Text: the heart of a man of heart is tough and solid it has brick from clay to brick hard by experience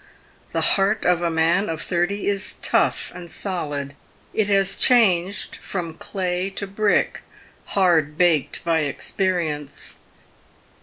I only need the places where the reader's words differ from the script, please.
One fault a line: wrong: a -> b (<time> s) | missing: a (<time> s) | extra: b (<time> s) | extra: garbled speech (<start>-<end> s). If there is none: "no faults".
wrong: heart -> thirty (1.8 s)
wrong: brick -> changed (4.8 s)
extra: baked (8.2 s)